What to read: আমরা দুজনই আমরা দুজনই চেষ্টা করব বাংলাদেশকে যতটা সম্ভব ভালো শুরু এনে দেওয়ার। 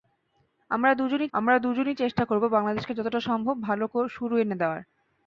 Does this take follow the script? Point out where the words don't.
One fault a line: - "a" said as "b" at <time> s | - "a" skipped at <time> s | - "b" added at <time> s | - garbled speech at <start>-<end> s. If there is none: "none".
none